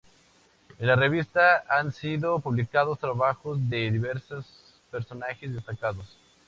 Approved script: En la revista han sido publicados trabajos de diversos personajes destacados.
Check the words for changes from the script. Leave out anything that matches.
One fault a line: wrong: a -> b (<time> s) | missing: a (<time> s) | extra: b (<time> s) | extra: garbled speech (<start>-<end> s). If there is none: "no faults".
no faults